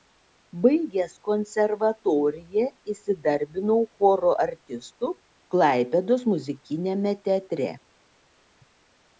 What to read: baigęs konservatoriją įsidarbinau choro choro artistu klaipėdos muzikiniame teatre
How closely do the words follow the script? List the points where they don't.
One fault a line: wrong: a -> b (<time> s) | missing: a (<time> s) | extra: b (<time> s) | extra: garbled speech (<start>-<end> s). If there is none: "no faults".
missing: choro (4.3 s)